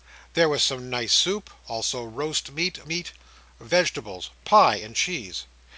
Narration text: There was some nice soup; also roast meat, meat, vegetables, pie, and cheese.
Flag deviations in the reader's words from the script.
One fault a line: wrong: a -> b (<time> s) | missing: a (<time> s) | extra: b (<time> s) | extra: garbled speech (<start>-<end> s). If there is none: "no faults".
no faults